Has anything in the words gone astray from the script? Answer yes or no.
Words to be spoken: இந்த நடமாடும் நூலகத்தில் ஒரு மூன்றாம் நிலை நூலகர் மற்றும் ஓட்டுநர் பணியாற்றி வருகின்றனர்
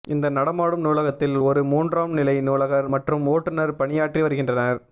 no